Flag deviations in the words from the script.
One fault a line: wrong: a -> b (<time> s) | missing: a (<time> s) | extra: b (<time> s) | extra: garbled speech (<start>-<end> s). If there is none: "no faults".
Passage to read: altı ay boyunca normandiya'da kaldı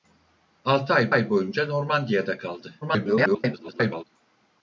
extra: ay (1.1 s)
extra: garbled speech (2.8-4.0 s)